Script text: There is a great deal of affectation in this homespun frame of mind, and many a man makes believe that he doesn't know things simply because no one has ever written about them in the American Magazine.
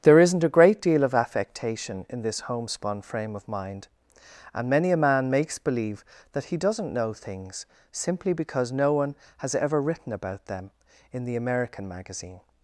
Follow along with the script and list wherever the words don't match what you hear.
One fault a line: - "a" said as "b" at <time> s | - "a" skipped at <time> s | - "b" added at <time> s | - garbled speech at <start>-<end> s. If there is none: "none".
- "is" said as "isn't" at 0.2 s